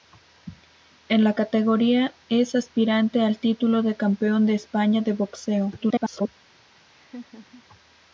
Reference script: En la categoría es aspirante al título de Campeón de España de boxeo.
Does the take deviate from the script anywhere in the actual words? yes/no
yes